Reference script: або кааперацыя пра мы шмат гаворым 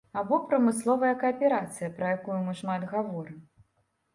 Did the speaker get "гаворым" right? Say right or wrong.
right